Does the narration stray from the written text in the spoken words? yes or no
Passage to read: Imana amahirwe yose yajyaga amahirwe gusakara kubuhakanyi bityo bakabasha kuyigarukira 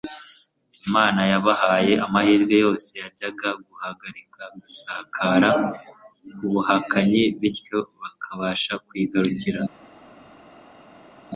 yes